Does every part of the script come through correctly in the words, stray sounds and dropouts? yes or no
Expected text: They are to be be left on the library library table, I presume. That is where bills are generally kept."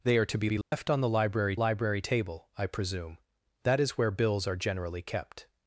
no